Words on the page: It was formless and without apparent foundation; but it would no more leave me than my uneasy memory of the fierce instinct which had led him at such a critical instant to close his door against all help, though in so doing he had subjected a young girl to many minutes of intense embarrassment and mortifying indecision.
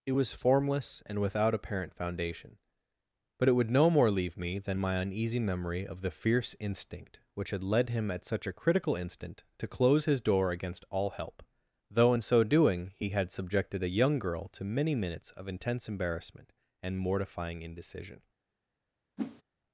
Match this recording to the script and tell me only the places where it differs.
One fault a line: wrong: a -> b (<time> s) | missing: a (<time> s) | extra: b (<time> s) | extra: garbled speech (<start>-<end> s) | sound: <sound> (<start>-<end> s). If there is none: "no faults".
sound: whoosh (19.2-19.4 s)